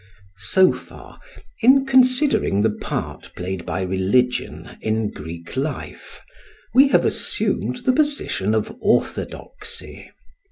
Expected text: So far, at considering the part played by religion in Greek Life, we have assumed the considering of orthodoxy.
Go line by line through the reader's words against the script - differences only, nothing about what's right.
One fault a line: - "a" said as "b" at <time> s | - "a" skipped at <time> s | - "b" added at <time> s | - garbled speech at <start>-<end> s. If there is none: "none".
- "at" said as "in" at 1.6 s
- "considering" said as "position" at 7.9 s